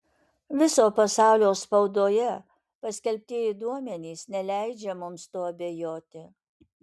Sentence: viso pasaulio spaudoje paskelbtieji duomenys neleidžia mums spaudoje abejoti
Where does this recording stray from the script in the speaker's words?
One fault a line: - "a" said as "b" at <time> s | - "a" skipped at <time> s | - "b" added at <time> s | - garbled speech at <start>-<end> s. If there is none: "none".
- "spaudoje" said as "tuo" at 5.3 s